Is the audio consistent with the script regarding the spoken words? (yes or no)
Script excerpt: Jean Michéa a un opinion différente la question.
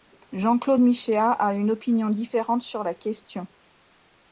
no